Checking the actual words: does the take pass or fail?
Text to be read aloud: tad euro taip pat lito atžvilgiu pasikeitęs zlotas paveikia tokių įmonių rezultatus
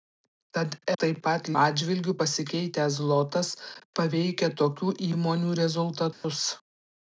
fail